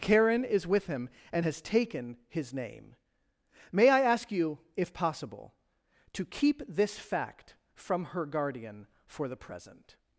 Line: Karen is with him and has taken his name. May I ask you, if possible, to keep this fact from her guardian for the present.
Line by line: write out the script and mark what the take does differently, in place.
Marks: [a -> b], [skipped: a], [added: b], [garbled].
Karen is with him and has taken his name. May I ask you, if possible, to keep this fact from her guardian for the present.